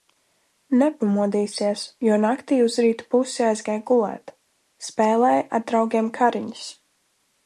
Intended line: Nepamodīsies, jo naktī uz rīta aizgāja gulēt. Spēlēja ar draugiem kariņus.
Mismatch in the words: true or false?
true